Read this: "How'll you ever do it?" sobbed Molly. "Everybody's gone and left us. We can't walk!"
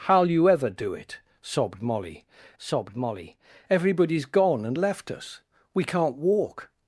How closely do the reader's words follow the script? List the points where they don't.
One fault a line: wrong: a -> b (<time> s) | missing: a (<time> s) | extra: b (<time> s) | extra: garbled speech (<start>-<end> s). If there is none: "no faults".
extra: sobbed Molly (2.6 s)